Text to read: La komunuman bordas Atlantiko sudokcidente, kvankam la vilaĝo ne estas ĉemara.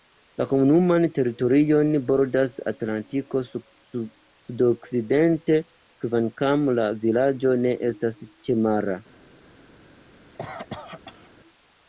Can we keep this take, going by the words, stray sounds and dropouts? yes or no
no